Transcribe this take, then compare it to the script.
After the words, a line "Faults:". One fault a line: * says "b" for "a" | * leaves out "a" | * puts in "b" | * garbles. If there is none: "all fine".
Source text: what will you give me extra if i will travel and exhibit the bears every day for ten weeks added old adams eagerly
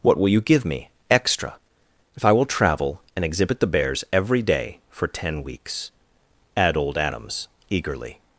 what will you give me extra if i will travel and exhibit the bears every day for ten weeks add old adams eagerly
Faults:
* says "add" for "added"